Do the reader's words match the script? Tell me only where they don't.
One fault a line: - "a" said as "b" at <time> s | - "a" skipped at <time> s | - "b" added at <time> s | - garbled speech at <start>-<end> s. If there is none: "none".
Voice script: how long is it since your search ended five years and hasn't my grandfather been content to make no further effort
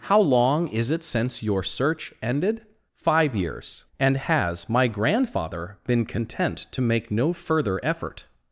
- "hasn't" said as "has" at 4.2 s